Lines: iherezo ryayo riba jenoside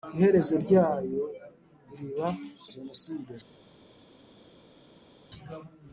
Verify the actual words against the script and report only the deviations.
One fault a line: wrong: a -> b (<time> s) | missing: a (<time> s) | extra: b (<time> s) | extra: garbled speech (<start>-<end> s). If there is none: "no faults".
no faults